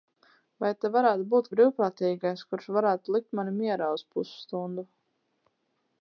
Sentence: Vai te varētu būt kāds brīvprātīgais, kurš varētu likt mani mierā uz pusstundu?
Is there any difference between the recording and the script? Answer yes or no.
yes